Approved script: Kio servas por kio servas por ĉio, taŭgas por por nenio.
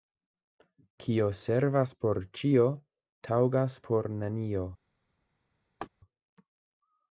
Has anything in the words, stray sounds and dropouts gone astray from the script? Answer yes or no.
yes